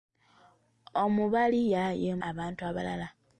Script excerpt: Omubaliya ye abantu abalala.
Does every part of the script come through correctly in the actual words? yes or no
yes